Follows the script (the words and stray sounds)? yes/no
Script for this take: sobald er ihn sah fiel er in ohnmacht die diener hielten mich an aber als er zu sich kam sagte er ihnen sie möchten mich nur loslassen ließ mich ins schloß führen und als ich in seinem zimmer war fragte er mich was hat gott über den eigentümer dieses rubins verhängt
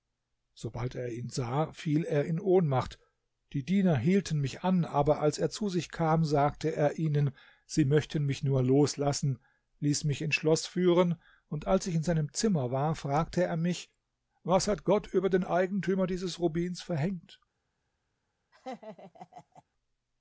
no